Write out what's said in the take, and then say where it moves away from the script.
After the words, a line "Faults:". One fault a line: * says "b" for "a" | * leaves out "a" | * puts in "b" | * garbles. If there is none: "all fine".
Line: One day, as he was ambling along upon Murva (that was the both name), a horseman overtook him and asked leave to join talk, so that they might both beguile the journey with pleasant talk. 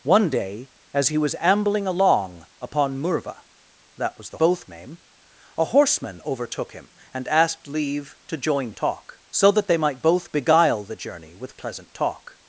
One day, as he was ambling along upon Murva (that was the both name), a horseman overtook him and asked leave to join talk, so that they might both beguile the journey with pleasant talk.
Faults:
all fine